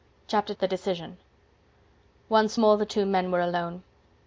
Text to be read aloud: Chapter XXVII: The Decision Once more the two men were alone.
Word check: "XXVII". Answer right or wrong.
wrong